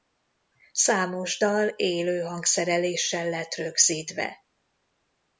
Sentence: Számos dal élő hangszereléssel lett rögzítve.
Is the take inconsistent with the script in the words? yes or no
no